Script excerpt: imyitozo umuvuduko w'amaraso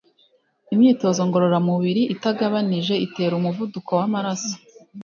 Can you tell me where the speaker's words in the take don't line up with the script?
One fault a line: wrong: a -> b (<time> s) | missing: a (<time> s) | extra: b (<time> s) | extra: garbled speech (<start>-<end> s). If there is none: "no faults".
extra: ngororamubiri itagabanije itera (1.3 s)